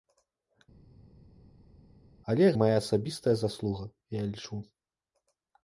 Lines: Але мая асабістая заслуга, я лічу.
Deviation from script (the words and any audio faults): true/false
false